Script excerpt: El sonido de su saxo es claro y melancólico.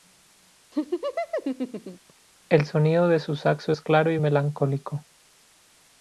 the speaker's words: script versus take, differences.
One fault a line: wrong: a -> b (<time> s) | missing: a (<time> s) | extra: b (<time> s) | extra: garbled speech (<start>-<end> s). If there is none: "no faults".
no faults